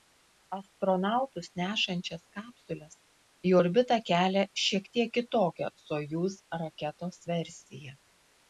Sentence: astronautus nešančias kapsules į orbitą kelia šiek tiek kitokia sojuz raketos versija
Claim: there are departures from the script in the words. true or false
false